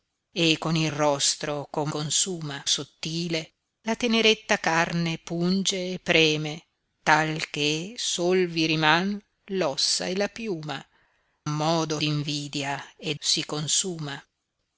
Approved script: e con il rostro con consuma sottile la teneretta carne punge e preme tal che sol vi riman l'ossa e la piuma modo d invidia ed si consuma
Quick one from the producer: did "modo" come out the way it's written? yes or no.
yes